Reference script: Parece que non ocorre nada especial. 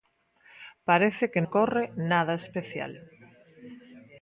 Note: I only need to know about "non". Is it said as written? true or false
false